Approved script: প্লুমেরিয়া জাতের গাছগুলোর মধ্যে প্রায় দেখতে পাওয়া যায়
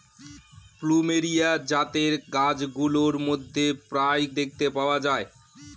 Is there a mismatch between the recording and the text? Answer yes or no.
no